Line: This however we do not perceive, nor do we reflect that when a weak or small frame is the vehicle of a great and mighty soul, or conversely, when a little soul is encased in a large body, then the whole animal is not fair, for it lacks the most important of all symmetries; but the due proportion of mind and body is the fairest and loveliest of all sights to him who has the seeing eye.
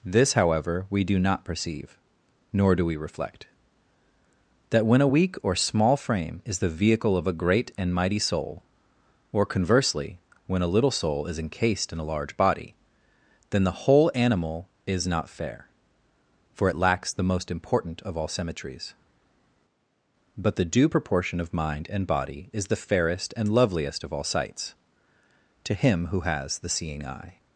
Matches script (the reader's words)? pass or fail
pass